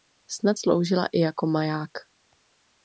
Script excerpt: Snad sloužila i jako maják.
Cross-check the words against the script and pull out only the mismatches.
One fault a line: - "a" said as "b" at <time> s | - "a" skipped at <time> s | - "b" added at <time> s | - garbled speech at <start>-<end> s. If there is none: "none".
none